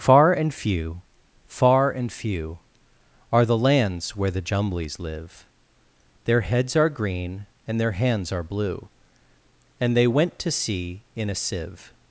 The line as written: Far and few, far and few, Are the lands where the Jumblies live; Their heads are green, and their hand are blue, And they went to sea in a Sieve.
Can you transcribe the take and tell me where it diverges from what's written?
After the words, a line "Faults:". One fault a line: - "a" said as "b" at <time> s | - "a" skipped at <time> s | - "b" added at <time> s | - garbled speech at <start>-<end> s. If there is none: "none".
Far and few, far and few, Are the lands where the Jumblies live; Their heads are green, and their hands are blue, And they went to sea in a Sieve.
Faults:
- "hand" said as "hands" at 7.9 s